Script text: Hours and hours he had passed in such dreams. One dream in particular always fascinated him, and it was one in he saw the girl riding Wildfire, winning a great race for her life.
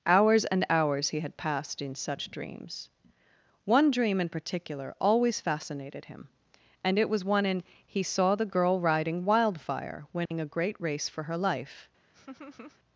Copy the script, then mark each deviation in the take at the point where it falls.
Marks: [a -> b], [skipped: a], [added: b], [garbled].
Hours and hours he had passed in such dreams. One dream in particular always fascinated him, and it was one in he saw the girl riding Wildfire, winning a great race for her life.